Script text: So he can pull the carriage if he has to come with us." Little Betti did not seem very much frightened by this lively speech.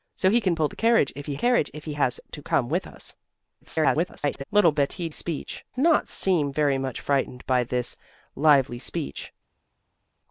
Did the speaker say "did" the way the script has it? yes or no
no